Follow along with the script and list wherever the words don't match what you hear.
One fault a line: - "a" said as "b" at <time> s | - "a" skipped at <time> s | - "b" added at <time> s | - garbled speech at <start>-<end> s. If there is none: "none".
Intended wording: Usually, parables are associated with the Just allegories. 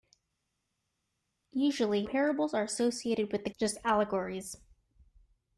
none